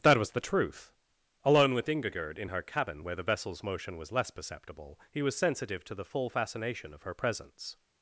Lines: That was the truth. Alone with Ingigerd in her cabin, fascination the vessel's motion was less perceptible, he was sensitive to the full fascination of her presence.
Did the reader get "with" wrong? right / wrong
right